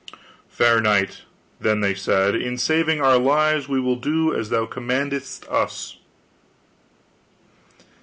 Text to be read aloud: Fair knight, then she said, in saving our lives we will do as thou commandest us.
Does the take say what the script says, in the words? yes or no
no